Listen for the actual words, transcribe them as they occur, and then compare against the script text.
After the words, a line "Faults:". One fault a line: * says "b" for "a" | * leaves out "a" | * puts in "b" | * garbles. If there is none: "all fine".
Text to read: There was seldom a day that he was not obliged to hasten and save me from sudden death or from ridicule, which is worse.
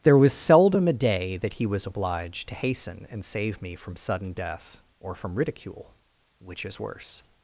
There was seldom a day that he was obliged to hasten and save me from sudden death or from ridicule, which is worse.
Faults:
* leaves out "not"